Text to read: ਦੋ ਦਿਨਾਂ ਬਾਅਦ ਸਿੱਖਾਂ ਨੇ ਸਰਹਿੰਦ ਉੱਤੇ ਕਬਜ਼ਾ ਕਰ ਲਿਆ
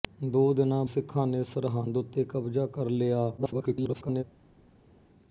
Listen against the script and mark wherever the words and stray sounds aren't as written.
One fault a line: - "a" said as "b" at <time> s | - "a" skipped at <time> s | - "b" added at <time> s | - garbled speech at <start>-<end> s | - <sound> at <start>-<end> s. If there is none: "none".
- "ਬਾਅਦ" skipped at 0.8 s
- garbled speech at 3.4-4.2 s